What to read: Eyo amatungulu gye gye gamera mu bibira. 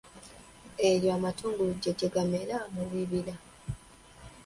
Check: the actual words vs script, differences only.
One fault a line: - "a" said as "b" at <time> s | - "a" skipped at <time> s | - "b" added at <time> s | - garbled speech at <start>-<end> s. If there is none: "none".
none